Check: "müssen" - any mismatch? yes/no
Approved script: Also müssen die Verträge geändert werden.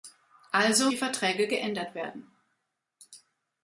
yes